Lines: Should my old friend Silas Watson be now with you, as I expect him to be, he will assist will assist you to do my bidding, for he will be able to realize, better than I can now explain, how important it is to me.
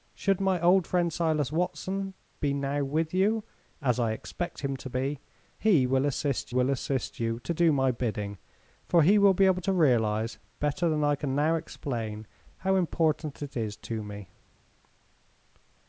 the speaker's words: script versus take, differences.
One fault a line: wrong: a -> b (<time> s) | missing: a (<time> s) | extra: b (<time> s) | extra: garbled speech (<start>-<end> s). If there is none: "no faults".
no faults